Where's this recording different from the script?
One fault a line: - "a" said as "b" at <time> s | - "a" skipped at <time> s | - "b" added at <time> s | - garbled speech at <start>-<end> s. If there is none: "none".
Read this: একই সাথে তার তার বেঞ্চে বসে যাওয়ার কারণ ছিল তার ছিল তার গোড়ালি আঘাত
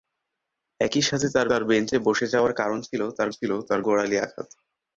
none